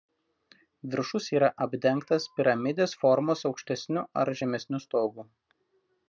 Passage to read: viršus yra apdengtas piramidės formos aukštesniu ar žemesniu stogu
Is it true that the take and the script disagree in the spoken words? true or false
false